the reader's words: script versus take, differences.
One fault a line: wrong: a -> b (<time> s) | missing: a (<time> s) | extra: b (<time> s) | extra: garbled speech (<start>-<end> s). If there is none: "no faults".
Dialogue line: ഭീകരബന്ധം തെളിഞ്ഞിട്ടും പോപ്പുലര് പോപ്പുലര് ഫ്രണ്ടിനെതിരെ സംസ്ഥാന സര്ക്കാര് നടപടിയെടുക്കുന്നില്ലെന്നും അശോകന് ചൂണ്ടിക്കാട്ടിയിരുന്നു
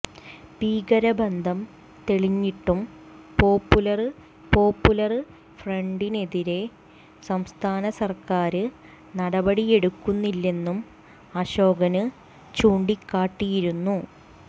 no faults